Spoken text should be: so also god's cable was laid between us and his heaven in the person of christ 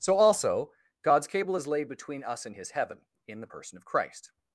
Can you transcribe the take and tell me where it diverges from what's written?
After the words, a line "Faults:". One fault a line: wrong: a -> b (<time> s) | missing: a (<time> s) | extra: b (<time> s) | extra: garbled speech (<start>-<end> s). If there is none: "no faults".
so also god's cable is laid between us and his heaven in the person of christ
Faults:
wrong: was -> is (1.5 s)